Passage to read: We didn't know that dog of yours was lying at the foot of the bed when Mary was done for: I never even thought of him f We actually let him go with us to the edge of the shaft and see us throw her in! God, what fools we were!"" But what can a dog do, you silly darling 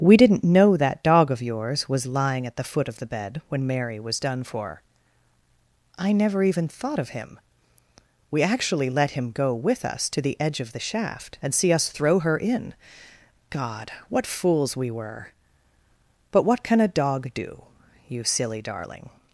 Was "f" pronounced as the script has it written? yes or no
no